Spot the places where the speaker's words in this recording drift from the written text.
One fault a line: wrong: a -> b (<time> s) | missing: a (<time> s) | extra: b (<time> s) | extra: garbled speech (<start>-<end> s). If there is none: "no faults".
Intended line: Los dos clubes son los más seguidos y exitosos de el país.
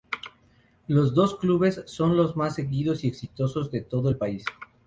extra: todo (3.8 s)